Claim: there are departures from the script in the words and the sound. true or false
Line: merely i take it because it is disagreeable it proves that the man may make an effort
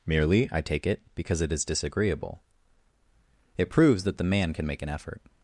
true